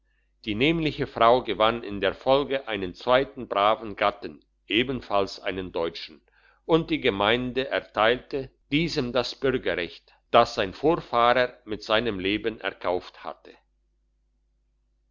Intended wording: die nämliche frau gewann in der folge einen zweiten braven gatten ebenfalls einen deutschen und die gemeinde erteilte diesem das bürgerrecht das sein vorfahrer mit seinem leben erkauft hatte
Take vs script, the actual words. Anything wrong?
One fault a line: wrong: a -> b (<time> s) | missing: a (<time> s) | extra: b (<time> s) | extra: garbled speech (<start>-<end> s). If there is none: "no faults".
no faults